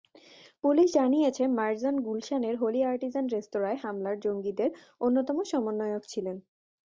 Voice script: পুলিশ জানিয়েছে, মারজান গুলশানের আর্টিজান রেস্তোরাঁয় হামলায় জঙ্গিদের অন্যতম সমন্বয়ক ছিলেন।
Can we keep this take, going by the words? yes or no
no